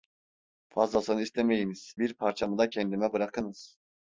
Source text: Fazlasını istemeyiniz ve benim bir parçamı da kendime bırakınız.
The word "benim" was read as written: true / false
false